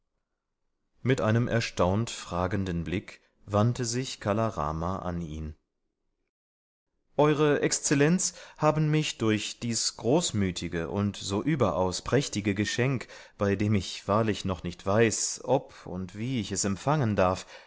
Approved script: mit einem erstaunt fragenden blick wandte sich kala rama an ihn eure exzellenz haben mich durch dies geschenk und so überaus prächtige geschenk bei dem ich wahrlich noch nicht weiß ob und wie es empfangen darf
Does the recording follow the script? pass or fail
fail